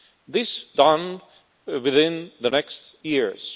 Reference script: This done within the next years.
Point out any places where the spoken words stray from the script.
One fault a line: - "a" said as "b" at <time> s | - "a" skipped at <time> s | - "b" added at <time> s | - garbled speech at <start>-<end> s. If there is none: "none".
none